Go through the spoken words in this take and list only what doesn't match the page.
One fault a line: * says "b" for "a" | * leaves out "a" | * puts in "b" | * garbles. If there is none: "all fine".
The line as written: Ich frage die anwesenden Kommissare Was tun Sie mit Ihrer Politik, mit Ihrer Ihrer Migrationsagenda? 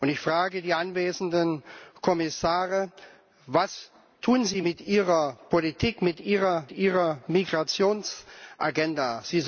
all fine